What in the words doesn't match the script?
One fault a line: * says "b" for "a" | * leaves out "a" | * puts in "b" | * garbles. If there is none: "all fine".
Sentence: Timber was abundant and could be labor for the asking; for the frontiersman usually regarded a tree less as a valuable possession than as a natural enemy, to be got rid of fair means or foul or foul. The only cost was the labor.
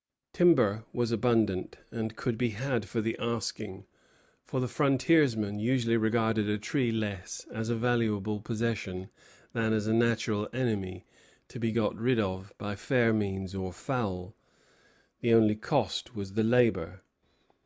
* says "had" for "labor"
* puts in "by"
* leaves out "or foul"